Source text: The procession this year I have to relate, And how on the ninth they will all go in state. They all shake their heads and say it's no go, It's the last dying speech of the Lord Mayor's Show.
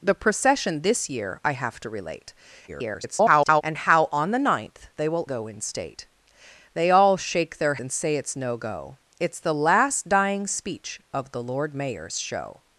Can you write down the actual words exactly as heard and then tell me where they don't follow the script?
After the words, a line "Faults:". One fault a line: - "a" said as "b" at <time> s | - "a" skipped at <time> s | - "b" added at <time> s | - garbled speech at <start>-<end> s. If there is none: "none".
The procession this year I have to relate, [garbled] And how on the ninth they will go in state. They all shake their and say it's no go, It's the last dying speech of the Lord Mayor's Show.
Faults:
- garbled speech at 2.7-3.6 s
- "all" skipped at 5.3 s
- "heads" skipped at 7.8 s